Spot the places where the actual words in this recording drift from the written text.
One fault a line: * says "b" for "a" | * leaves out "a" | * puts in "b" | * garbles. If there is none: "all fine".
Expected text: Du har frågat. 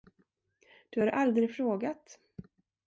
* puts in "aldrig"